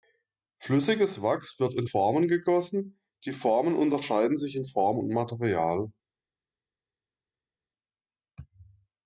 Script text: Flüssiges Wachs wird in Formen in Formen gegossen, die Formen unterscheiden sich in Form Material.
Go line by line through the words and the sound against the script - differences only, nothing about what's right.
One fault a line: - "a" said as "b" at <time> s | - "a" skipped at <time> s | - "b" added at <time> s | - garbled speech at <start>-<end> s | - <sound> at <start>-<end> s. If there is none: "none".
- "in Formen" skipped at 2.3 s
- "und" added at 5.0 s